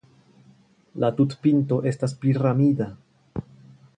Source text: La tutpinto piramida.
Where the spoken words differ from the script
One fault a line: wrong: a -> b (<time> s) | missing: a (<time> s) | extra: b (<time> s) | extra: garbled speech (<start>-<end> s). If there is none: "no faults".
extra: estas (1.9 s)